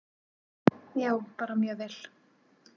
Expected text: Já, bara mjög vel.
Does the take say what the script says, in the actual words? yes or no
yes